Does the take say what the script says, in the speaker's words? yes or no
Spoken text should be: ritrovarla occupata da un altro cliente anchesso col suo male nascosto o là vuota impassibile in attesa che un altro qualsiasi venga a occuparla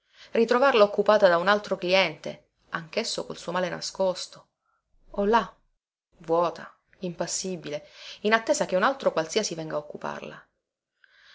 yes